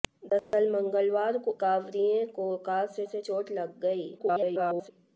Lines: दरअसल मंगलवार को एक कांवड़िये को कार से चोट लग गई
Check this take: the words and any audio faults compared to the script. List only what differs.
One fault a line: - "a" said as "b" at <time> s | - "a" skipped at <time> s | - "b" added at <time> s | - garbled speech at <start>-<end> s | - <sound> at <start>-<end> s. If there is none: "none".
- dropout at 0.4-0.5 s
- "एक" skipped at 1.6 s
- "से" added at 3.0 s
- garbled speech at 4.2-4.9 s